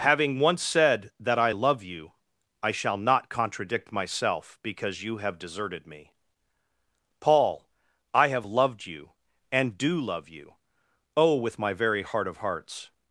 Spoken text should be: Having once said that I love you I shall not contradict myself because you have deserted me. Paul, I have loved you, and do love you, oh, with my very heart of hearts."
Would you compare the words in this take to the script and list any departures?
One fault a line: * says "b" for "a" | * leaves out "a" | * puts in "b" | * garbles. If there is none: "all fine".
all fine